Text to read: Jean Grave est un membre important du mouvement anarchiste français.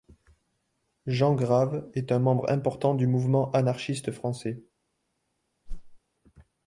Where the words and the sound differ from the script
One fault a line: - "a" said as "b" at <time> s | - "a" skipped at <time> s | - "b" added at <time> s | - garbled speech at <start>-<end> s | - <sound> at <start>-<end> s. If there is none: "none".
- whoosh at 5.7-6.0 s